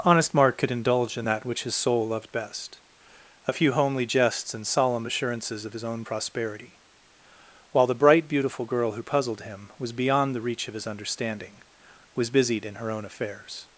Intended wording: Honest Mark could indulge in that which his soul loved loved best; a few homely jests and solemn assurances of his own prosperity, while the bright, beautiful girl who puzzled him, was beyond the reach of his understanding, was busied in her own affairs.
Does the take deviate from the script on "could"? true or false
false